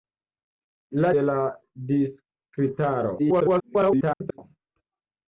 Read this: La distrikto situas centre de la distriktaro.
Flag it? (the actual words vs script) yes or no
yes